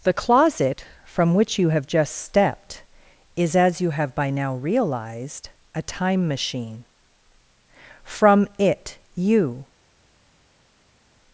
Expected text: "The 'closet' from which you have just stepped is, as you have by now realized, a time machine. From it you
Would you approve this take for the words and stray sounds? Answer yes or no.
yes